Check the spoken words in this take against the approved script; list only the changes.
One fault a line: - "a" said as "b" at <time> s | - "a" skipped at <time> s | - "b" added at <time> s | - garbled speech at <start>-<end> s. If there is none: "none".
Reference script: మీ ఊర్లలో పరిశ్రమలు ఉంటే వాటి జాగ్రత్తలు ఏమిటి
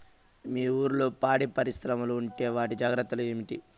- "పాడి" added at 1.2 s